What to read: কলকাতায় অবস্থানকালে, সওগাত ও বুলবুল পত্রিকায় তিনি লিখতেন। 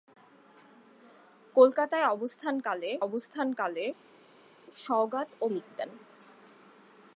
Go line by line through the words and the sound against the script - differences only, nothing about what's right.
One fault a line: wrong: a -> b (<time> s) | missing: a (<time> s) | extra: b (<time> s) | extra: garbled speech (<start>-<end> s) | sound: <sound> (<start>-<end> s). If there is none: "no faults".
extra: অবস্থানকালে (3.0 s)
missing: বুলবুল পত্রিকায় তিনি (5.5 s)